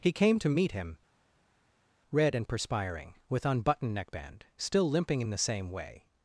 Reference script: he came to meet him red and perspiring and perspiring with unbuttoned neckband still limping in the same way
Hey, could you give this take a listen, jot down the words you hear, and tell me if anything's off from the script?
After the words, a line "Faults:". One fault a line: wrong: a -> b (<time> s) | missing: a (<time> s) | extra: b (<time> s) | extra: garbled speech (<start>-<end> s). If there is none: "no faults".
he came to meet him red and perspiring with unbuttoned neckband still limping in the same way
Faults:
missing: and perspiring (3.1 s)